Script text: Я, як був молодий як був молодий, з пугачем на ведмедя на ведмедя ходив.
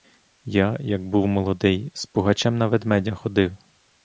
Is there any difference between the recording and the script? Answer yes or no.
yes